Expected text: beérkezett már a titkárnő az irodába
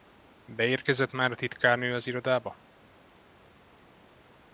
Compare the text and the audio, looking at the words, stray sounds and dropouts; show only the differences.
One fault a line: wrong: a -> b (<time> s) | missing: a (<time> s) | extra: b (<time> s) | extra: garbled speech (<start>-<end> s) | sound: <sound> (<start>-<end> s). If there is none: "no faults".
no faults